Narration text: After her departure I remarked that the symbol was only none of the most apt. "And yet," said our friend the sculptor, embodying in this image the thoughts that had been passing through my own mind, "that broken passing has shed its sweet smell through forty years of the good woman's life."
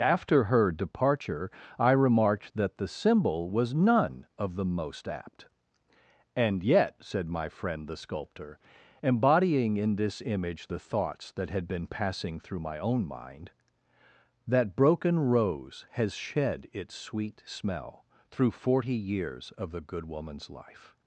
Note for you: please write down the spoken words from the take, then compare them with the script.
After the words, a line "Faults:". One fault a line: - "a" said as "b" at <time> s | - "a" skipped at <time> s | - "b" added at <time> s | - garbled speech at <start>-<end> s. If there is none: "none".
After her departure I remarked that the symbol was none of the most apt. "And yet," said my friend the sculptor, embodying in this image the thoughts that had been passing through my own mind, "that broken rose has shed its sweet smell through forty years of the good woman's life."
Faults:
- "only" skipped at 3.8 s
- "our" said as "my" at 7.3 s
- "passing" said as "rose" at 15.2 s